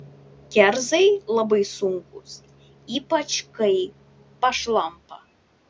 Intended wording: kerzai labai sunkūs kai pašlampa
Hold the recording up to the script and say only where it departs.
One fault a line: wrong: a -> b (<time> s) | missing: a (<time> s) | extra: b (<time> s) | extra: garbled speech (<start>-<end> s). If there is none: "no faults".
extra: ypač (3.0 s)